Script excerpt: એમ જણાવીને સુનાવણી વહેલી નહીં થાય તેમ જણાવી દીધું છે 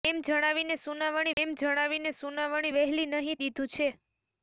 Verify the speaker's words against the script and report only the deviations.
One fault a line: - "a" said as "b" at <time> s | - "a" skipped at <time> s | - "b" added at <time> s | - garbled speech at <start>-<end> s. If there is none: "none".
- "વહેલી નહીં થાય તેમ જણાવી" said as "એમ જણાવીને સુનાવણી વહેલી નહીં" at 1.4 s